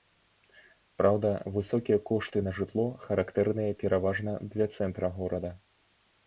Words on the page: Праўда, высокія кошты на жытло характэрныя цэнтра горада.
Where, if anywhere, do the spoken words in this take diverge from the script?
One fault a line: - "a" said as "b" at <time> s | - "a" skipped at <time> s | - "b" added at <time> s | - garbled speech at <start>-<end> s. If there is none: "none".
- "пераважна для" added at 3.8 s